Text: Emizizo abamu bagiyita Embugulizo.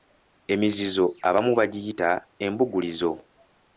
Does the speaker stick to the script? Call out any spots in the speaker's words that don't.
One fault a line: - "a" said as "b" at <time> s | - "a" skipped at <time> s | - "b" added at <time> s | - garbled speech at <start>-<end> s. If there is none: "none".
none